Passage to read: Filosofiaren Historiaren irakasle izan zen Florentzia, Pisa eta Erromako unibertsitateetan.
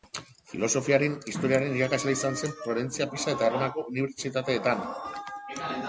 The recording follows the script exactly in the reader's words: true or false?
true